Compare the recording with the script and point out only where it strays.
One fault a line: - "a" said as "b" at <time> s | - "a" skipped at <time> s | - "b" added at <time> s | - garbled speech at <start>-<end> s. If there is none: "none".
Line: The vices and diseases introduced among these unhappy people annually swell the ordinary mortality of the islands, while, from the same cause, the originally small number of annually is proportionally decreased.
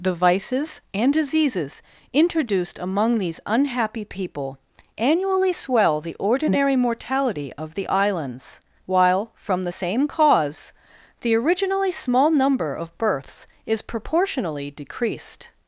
- "annually" said as "births" at 13.0 s